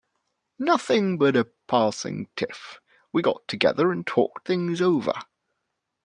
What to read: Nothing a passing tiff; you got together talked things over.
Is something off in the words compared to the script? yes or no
yes